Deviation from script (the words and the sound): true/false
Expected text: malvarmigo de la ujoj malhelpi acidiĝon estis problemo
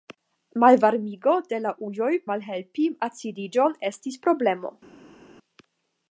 false